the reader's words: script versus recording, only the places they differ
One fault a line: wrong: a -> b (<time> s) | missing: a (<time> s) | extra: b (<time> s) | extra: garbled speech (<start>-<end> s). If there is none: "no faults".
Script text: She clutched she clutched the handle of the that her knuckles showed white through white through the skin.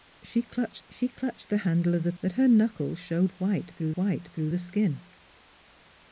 no faults